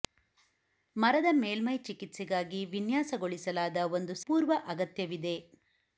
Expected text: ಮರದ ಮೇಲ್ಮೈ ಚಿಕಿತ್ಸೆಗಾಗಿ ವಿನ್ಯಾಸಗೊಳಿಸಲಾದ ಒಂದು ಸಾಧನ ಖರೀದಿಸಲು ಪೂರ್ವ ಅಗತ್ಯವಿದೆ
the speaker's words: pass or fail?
fail